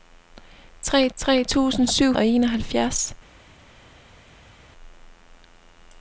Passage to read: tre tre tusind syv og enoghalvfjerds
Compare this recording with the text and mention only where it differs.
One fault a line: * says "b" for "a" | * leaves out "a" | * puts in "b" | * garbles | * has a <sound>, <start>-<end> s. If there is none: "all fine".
all fine